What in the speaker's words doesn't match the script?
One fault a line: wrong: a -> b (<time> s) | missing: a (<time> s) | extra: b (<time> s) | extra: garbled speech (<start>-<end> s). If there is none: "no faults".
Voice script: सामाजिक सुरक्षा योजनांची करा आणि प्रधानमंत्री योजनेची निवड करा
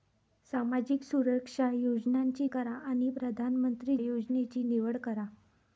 no faults